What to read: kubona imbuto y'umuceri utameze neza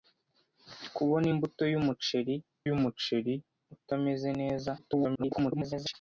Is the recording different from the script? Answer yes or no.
yes